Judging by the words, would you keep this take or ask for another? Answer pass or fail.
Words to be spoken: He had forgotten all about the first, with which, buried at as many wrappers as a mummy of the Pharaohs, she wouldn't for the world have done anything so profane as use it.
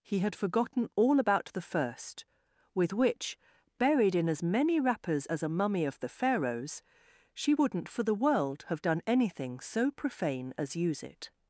fail